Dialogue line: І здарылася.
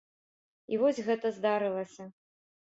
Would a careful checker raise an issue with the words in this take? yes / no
yes